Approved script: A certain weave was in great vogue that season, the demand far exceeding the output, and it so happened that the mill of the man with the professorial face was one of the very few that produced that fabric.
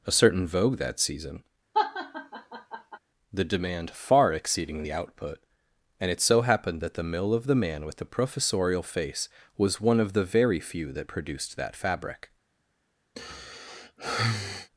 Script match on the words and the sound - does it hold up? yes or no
no